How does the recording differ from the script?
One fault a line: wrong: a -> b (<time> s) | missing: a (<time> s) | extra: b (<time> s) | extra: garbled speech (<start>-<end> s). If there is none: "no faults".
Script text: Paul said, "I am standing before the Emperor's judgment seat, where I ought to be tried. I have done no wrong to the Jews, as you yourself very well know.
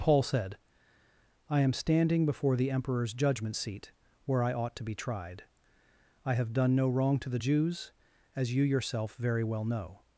no faults